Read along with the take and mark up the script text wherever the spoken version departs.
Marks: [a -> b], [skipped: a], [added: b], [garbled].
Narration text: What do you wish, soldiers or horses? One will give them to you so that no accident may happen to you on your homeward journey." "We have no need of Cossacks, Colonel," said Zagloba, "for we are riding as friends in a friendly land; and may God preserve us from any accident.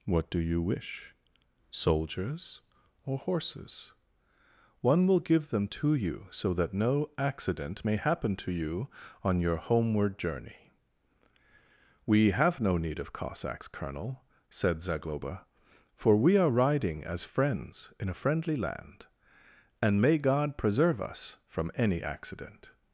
What do you wish, soldiers or horses? One will give them to you so that no accident may happen to you on your homeward journey." "We have no need of Cossacks, Colonel," said Zagloba, "for we are riding as friends in a friendly land; and may God preserve us from any accident.